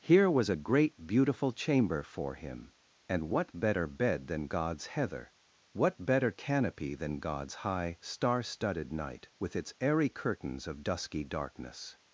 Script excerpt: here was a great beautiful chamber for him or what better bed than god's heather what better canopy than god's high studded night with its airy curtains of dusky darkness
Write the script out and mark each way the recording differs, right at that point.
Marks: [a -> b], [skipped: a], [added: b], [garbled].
here was a great beautiful chamber for him [or -> and] what better bed than god's heather what better canopy than god's high [added: star] studded night with its airy curtains of dusky darkness